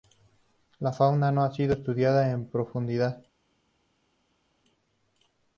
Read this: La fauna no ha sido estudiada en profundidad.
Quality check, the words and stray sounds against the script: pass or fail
pass